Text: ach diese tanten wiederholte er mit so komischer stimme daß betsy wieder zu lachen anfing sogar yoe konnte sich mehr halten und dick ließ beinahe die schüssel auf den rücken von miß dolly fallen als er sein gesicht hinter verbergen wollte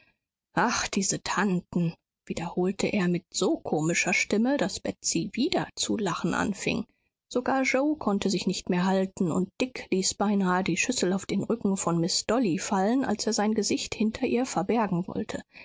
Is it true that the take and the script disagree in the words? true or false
true